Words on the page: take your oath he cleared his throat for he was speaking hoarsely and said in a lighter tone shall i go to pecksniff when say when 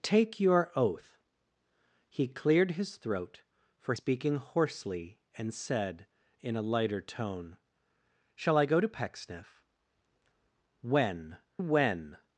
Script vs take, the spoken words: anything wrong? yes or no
yes